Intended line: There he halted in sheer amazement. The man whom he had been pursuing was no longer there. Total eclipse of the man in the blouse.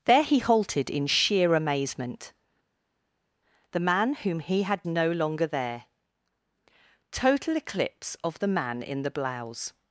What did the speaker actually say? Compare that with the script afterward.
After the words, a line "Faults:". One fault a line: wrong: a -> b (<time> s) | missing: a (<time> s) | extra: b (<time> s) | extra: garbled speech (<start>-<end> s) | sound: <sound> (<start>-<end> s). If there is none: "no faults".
There he halted in sheer amazement. The man whom he had no longer there. Total eclipse of the man in the blouse.
Faults:
missing: been pursuing was (4.8 s)